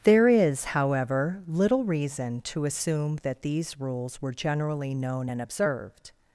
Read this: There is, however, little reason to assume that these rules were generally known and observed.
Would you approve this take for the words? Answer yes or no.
yes